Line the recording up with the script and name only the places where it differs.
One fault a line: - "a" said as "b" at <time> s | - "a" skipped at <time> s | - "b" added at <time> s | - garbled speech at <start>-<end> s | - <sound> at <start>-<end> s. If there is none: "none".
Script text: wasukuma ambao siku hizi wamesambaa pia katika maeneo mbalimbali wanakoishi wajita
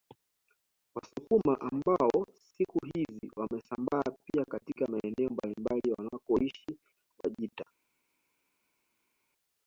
none